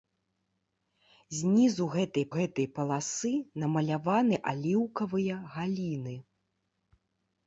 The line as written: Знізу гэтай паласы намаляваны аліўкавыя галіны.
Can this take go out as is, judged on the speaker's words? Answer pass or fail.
fail